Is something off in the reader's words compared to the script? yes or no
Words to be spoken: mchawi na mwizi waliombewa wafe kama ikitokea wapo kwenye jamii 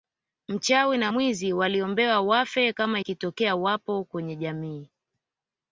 no